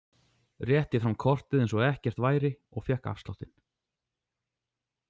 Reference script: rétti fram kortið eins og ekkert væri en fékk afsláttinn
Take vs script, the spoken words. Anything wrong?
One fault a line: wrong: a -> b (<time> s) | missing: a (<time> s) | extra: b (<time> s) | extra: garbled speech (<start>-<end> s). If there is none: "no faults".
wrong: en -> og (2.8 s)